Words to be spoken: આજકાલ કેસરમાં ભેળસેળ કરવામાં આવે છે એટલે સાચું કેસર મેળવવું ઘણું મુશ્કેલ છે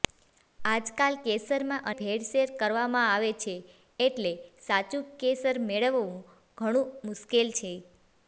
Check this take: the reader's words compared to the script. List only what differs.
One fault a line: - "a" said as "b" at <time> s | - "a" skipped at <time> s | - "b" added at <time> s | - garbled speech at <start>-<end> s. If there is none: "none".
none